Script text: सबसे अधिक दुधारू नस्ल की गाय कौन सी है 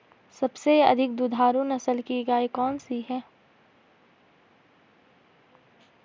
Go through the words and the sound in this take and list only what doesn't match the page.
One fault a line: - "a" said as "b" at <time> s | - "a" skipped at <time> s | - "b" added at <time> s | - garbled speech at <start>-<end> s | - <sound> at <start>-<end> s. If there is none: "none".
none